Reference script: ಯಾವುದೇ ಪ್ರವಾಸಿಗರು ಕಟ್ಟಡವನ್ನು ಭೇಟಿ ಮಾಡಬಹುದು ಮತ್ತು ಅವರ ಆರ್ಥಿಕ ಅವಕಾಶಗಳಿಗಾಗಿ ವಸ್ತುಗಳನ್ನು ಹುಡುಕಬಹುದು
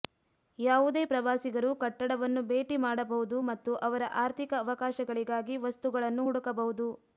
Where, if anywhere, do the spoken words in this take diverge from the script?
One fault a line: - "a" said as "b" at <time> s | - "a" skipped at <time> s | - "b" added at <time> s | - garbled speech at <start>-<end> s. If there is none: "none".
none